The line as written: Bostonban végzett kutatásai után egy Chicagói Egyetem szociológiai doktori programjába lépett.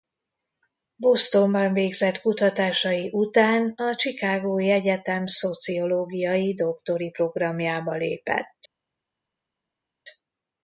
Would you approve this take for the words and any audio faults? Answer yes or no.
no